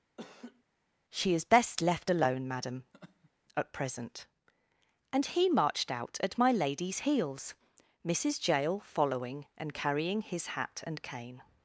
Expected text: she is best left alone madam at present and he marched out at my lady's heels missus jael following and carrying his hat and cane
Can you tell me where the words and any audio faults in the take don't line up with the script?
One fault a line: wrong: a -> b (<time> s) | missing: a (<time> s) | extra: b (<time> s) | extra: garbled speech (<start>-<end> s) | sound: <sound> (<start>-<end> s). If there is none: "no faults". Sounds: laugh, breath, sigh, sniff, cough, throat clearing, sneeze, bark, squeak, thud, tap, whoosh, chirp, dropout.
sound: laugh (0.2-0.6 s)
sound: laugh (2.9-3.3 s)